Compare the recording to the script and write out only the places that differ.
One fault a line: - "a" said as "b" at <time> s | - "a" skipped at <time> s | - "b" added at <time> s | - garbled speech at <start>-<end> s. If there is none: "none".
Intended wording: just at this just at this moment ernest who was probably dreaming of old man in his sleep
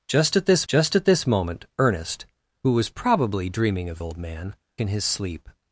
none